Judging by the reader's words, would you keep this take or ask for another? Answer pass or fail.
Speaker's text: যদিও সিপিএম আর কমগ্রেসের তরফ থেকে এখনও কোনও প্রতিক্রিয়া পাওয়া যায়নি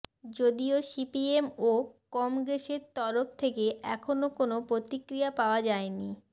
fail